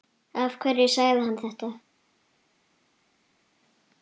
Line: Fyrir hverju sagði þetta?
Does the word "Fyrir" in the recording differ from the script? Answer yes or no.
yes